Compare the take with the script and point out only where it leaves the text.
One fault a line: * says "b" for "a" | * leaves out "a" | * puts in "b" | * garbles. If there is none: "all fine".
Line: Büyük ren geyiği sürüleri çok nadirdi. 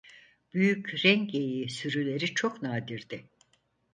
all fine